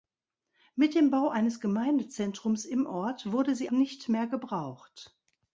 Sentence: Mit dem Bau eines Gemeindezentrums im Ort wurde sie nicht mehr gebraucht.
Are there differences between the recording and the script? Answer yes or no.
no